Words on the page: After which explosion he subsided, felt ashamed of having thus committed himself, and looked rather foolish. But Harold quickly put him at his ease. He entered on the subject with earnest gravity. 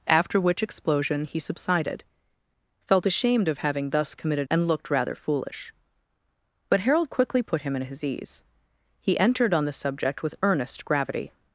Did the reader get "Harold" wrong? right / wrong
right